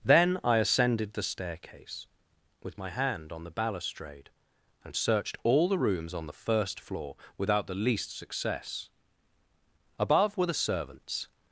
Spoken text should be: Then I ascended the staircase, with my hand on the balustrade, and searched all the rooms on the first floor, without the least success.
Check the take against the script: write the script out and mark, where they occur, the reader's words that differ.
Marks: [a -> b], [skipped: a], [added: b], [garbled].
Then I ascended the staircase, with my hand on the balustrade, and searched all the rooms on the first floor, without the least success. [added: Above were the servants]